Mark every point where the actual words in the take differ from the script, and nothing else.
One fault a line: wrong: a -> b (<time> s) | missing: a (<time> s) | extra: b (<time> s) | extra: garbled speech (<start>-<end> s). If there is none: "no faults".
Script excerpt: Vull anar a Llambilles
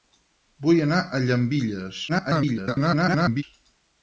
extra: garbled speech (2.1-3.4 s)